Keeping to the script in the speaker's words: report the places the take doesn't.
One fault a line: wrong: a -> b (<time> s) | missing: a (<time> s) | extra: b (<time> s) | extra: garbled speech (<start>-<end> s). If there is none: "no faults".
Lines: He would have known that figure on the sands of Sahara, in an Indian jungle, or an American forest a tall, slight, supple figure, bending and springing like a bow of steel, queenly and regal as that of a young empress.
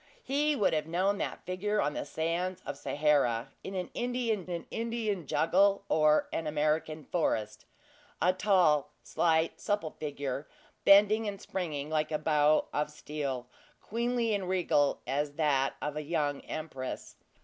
extra: an Indian (4.5 s)